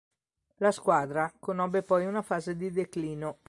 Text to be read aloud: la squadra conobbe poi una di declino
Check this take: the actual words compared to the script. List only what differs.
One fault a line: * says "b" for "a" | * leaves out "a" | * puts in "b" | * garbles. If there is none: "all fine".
* puts in "fase"